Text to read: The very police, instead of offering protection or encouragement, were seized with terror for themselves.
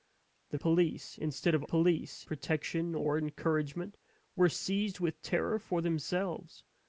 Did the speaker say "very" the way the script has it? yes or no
no